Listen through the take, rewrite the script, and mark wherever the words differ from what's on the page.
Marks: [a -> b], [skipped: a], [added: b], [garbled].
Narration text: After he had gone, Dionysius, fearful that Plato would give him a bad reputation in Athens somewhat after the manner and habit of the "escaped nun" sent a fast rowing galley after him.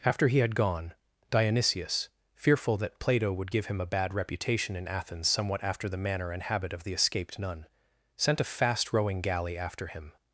After he had gone, Dionysius, fearful that Plato would give him a bad reputation in Athens somewhat after the manner and habit of the "escaped nun" sent a fast rowing galley after him.